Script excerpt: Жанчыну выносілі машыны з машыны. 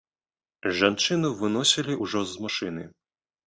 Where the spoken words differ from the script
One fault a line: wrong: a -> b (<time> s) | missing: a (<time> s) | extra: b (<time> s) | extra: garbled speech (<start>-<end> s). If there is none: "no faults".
wrong: машыны -> ўжо (2.0 s)